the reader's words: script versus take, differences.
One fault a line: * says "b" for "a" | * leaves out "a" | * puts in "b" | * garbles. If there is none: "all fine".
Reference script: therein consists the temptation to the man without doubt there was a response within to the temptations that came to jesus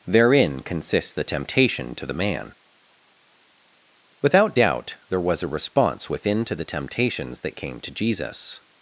all fine